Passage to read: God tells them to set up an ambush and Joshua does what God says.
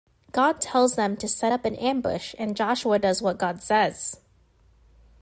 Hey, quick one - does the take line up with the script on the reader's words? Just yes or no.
yes